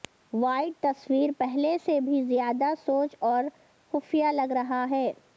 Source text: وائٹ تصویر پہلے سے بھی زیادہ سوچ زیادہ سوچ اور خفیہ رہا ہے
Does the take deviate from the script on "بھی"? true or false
false